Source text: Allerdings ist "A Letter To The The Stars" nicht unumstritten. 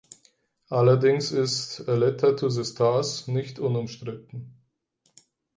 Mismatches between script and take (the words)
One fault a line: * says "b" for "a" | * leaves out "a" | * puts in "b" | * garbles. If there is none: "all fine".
* leaves out "The"